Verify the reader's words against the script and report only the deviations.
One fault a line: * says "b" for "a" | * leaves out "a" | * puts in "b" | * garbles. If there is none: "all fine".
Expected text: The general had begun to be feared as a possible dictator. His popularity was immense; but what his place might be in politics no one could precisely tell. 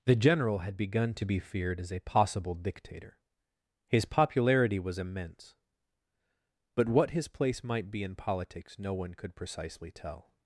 all fine